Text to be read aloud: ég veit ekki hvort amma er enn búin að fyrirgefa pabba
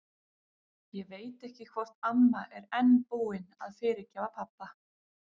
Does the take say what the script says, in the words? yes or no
yes